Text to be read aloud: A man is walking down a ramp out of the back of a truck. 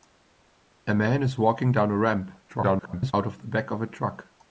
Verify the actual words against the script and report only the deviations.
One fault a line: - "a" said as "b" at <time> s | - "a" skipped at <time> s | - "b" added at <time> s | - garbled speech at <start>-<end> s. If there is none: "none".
- garbled speech at 2.5-3.1 s